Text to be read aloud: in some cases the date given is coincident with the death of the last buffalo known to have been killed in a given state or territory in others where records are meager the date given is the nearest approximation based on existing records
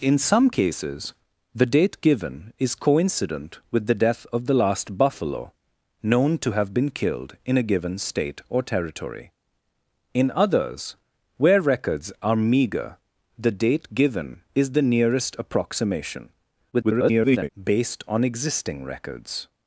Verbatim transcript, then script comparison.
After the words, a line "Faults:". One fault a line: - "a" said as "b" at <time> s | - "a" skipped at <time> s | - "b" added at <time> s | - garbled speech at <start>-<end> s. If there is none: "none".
in some cases the date given is coincident with the death of the last buffalo known to have been killed in a given state or territory in others where records are meager the date given is the nearest approximation [garbled] based on existing records
Faults:
- garbled speech at 16.7-17.5 s